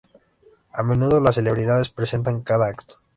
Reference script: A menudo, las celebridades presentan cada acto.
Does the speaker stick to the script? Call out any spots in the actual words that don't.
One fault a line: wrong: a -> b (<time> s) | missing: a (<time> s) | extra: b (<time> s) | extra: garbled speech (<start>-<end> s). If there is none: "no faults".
no faults